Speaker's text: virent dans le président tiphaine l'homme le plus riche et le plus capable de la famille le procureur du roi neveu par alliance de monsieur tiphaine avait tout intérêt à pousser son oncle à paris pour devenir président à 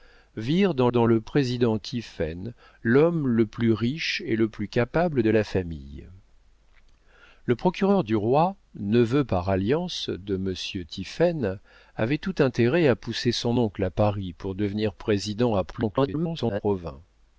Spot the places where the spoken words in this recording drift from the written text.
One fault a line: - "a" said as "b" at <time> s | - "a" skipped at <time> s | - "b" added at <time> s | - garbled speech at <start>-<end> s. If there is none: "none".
- "dans" added at 0.9 s
- garbled speech at 15.7-16.6 s